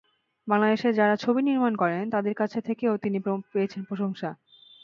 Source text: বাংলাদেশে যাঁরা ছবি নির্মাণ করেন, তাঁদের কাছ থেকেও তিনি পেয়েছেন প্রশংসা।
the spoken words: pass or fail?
pass